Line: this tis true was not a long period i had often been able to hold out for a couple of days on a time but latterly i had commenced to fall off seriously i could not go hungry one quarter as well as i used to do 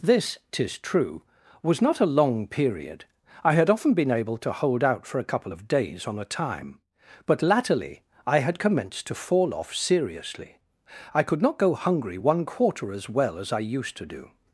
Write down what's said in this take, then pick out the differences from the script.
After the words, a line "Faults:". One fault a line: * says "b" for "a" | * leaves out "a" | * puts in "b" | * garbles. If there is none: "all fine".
this tis true was not a long period i had often been able to hold out for a couple of days on a time but latterly i had commenced to fall off seriously i could not go hungry one quarter as well as i used to do
Faults:
all fine